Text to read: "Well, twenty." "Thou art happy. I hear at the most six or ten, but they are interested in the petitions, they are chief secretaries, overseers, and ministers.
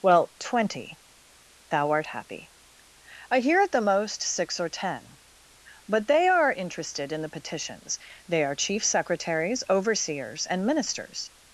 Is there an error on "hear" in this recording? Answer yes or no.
no